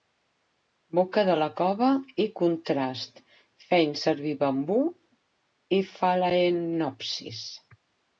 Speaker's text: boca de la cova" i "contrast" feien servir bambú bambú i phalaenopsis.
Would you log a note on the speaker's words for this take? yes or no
yes